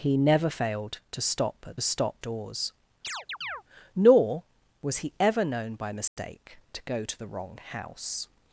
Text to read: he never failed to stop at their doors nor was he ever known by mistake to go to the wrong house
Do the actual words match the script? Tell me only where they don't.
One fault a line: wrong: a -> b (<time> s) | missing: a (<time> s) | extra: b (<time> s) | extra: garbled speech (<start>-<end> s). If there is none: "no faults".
wrong: their -> stop (1.8 s)